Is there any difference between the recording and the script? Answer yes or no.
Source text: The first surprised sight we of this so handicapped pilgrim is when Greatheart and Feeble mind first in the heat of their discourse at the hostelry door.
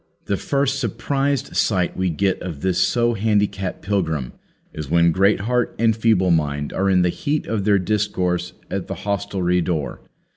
yes